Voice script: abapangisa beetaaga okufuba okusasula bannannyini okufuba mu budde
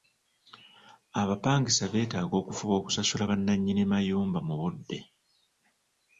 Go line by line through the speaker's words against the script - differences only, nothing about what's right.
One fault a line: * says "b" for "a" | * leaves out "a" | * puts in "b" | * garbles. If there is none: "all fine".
* says "mayumba" for "okufuba"